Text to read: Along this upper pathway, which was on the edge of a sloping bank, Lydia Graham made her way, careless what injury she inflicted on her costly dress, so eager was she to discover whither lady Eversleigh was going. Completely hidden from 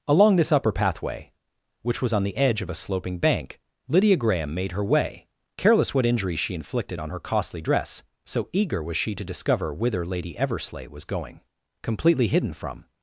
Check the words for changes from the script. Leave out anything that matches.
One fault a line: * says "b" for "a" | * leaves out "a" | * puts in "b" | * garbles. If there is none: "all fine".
all fine